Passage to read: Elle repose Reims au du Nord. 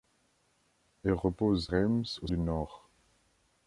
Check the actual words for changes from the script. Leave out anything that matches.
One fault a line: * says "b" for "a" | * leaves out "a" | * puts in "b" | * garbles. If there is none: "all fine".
all fine